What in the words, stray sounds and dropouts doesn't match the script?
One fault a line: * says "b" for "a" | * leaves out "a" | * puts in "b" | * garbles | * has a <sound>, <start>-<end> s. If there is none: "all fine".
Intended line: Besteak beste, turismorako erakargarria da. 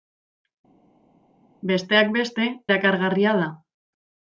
* leaves out "turismorako"